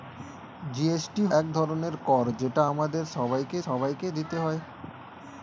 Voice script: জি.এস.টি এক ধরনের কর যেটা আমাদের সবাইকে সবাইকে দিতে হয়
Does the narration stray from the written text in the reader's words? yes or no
no